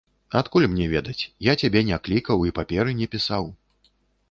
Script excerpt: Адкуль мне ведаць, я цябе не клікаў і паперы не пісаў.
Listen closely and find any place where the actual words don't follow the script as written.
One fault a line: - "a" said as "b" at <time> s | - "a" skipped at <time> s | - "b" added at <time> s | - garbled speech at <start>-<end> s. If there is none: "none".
none